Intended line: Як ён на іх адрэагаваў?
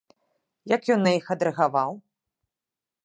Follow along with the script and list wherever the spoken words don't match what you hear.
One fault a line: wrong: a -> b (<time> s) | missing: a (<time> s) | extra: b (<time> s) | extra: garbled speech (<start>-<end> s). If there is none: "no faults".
no faults